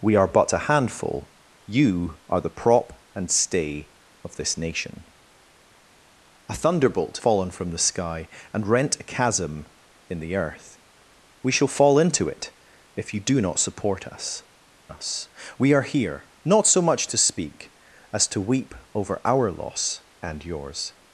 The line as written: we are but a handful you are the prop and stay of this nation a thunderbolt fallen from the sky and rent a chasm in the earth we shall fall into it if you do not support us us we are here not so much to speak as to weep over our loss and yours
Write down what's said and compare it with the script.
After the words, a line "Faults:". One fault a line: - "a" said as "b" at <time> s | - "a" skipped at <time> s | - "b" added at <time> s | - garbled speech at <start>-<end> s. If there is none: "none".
we are but a handful you are the prop and stay of this nation a thunderbolt fallen from the sky and rent a chasm in the earth we shall fall into it if you do not support us us we are here not so much to speak as to weep over our loss and yours
Faults:
none